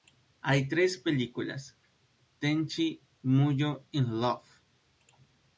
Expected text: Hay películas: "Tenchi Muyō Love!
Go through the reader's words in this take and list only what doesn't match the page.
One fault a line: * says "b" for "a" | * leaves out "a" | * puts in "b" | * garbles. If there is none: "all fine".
* puts in "tres"
* puts in "in"